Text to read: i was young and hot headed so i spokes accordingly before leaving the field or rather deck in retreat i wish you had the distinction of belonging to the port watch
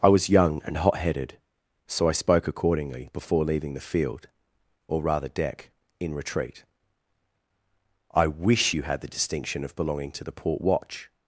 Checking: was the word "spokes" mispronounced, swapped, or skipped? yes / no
yes